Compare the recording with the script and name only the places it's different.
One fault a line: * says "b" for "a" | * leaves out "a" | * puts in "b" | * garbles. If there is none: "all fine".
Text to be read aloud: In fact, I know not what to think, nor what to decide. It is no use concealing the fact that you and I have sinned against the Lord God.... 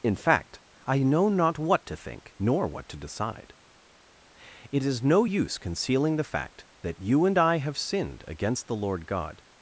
all fine